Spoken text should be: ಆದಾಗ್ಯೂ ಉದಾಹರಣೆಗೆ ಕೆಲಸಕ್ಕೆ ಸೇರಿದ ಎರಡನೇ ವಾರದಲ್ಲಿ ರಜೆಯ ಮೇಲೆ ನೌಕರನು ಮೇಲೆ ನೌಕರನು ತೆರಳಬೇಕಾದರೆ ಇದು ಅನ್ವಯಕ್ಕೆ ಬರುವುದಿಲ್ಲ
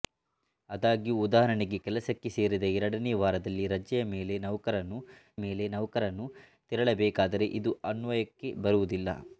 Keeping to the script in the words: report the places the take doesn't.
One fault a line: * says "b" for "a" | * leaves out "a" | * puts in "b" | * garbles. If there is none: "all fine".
all fine